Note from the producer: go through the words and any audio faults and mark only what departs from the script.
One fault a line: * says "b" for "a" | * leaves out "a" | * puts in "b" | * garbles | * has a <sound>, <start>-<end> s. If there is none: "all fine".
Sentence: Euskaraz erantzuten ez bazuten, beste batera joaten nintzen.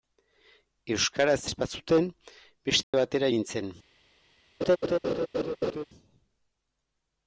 * leaves out "erantzuten"
* has a dropout, 2.8-2.9 s
* leaves out "joaten"
* has a laugh, 4.6-5.8 s